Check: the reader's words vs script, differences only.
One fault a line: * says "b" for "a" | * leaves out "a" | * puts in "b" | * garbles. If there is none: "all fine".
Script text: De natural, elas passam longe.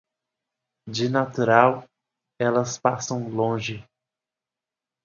all fine